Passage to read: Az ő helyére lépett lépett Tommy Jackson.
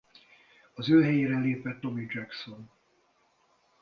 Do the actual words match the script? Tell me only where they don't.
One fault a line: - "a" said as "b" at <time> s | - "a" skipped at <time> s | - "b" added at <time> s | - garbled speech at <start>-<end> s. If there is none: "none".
- "lépett" skipped at 1.8 s